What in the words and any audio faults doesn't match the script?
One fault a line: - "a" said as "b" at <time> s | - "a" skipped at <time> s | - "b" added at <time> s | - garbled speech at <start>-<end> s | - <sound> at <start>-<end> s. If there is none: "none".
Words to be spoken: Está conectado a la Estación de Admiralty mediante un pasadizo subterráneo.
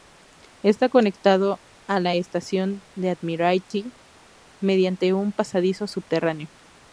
none